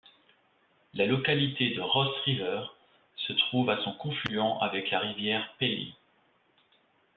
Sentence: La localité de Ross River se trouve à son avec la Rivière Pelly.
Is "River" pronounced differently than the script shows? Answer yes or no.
no